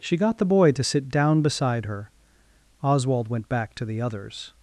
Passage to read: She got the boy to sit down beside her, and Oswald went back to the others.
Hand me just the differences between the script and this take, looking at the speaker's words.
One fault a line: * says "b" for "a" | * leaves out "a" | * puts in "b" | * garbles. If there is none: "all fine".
* leaves out "and"